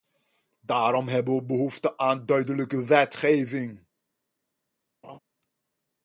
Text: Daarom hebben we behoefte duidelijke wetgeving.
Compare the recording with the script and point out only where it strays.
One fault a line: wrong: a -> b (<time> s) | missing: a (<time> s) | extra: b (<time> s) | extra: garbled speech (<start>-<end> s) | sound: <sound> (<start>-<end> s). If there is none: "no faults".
extra: aan (2.0 s)
sound: laugh (5.0-5.2 s)